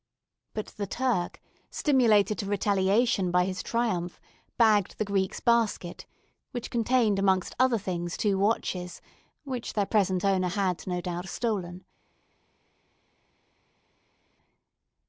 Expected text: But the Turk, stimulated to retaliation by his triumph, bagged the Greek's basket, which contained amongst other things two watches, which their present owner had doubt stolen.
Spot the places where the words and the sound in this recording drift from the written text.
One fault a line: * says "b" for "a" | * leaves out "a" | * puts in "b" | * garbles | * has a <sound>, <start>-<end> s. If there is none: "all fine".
* puts in "no"